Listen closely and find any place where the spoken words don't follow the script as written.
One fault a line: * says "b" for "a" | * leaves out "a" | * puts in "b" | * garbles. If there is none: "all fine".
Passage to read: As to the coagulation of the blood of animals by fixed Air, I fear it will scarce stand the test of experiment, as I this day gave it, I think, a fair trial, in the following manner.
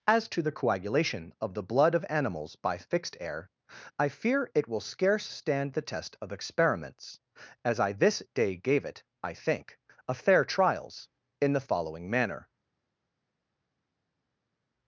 * says "experiments" for "experiment"
* says "trials" for "trial"